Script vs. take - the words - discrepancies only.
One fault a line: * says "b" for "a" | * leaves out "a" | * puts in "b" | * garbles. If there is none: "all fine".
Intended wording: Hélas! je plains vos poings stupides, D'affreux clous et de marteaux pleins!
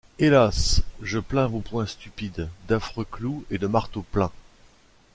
all fine